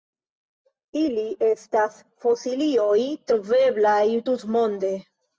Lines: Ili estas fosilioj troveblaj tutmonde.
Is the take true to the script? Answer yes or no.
yes